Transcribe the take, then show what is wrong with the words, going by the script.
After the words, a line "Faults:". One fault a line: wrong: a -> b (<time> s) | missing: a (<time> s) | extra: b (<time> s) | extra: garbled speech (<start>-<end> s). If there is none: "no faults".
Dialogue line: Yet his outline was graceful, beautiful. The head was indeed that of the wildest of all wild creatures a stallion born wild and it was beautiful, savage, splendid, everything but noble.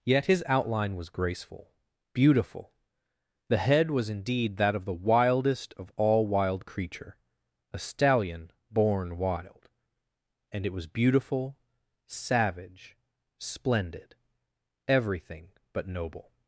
Yet his outline was graceful, beautiful. The head was indeed that of the wildest of all wild creature a stallion born wild and it was beautiful, savage, splendid, everything but noble.
Faults:
wrong: creatures -> creature (6.6 s)